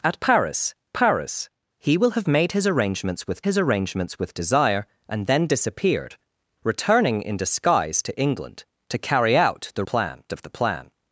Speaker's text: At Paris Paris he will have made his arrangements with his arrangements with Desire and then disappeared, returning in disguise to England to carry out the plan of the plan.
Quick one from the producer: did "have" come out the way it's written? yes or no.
yes